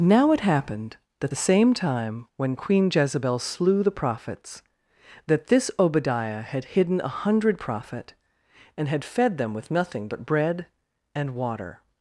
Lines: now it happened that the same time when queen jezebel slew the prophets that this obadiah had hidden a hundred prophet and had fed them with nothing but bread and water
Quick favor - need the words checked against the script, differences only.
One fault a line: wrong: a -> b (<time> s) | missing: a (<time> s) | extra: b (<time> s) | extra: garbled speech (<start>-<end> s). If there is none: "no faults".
no faults